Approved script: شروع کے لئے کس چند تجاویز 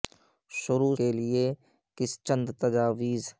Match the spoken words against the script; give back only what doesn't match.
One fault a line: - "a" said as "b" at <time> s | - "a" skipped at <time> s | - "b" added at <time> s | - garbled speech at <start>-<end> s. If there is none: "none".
none